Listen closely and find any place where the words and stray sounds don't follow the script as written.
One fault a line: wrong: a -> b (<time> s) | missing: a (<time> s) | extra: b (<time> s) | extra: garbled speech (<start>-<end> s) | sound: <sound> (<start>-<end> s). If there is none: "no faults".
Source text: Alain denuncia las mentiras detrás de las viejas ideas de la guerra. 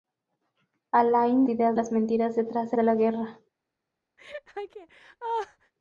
wrong: denuncia -> ideas (1.5 s)
missing: las viejas ideas (2.8 s)
sound: laugh (4.2-5.7 s)